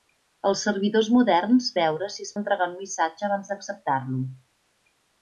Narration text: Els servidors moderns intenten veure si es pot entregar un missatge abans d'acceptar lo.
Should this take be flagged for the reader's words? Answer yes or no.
yes